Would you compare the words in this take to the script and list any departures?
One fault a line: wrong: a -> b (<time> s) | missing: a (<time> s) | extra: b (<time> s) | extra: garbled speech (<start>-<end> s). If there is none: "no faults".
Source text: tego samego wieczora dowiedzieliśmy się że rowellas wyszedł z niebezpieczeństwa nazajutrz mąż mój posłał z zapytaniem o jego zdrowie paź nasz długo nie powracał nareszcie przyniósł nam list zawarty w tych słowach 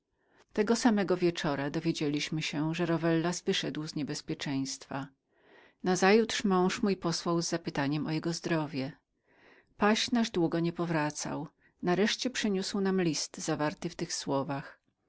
no faults